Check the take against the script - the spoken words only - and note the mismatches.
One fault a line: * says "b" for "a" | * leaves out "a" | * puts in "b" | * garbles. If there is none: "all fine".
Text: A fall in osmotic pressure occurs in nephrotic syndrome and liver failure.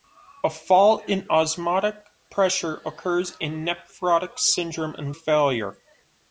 * leaves out "liver"